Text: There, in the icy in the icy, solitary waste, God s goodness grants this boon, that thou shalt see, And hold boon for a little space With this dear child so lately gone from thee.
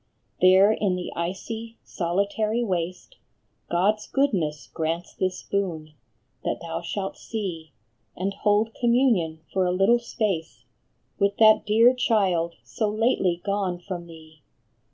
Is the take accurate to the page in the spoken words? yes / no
no